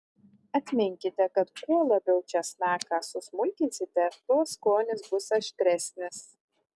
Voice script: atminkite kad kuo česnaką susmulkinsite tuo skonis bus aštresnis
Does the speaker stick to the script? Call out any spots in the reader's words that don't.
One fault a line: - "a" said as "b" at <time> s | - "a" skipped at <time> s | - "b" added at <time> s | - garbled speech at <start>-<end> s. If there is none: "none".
- "labiau" added at 1.9 s